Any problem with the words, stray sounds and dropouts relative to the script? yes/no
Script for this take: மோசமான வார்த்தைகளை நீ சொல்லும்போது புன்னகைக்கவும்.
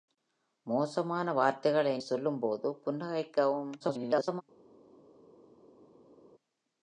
yes